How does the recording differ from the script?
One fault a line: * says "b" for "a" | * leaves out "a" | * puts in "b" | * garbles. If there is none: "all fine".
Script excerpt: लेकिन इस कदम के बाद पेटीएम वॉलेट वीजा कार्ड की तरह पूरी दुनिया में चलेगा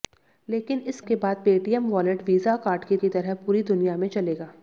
* leaves out "कदम"
* puts in "की"